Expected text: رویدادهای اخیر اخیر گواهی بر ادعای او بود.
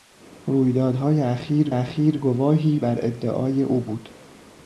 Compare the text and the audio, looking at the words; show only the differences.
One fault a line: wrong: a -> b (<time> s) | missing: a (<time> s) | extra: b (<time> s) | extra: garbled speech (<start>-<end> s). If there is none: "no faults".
no faults